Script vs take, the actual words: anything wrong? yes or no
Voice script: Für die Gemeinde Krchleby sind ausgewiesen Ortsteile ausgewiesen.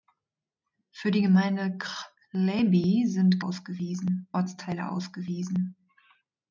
no